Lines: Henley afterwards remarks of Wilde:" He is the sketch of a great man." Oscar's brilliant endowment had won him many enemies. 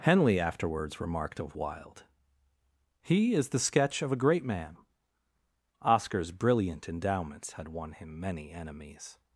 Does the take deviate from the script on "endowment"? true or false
true